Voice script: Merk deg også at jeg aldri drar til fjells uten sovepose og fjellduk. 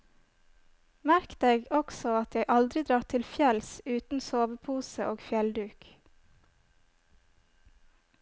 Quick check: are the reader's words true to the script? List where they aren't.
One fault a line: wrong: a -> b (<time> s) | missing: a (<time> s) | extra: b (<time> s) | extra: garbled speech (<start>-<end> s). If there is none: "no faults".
no faults